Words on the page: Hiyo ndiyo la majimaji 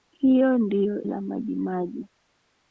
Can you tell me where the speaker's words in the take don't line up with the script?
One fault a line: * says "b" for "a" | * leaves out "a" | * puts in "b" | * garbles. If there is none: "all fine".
all fine